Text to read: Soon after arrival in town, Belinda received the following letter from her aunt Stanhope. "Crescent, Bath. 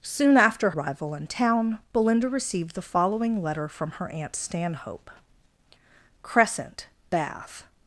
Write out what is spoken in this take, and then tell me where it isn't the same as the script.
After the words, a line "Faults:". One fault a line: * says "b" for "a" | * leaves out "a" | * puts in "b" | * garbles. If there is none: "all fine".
Soon after arrival in town, Belinda received the following letter from her aunt Stanhope. "Crescent, Bath.
Faults:
all fine